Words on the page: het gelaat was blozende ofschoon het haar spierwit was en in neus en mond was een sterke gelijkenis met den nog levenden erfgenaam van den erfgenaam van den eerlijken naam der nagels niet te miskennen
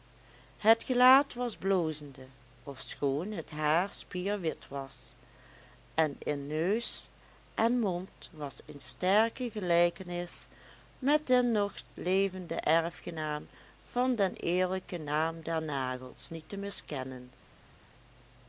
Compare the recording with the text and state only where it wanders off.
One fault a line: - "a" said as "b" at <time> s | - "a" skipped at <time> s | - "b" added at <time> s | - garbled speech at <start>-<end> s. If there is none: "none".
- "erfgenaam van den" skipped at 14.3 s